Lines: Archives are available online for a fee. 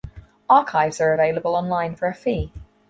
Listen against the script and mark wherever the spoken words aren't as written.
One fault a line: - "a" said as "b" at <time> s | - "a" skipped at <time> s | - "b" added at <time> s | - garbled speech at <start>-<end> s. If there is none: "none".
none